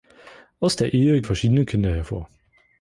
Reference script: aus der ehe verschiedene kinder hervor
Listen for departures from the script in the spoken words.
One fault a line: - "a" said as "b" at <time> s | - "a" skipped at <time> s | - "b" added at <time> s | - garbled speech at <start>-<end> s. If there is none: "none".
none